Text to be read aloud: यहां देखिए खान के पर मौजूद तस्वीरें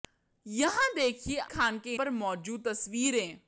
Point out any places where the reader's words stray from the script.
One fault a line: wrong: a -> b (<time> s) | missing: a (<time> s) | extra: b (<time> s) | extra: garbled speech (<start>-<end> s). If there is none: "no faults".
no faults